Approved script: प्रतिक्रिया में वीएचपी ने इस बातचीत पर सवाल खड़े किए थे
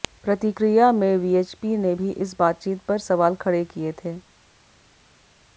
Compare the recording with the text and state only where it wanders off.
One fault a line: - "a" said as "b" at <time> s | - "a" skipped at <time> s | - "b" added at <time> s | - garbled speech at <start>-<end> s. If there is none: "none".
- "भी" added at 1.9 s